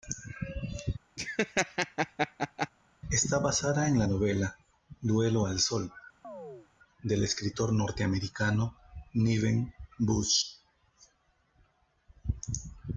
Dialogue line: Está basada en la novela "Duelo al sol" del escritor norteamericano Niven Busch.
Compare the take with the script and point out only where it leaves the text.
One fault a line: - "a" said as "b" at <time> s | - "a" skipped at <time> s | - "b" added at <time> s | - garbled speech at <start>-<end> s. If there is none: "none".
none